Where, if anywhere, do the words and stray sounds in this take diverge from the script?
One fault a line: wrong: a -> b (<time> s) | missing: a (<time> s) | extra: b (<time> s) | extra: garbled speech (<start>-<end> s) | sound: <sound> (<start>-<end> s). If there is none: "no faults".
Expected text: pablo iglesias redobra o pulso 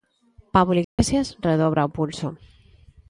sound: dropout (0.8-1.0 s)